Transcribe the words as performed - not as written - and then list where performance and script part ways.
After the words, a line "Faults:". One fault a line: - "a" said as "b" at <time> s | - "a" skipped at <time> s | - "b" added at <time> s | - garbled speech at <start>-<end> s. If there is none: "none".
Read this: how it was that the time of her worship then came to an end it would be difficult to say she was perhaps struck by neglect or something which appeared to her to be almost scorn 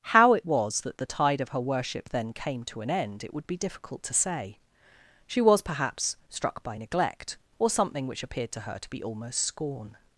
how it was that the tide of her worship then came to an end it would be difficult to say she was perhaps struck by neglect or something which appeared to her to be almost scorn
Faults:
- "time" said as "tide" at 1.1 s